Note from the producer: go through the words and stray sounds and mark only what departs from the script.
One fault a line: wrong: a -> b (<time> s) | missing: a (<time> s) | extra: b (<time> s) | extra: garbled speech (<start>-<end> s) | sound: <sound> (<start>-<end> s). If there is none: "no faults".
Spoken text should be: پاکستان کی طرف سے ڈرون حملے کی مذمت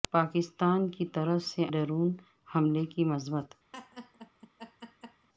sound: laugh (3.7-5.3 s)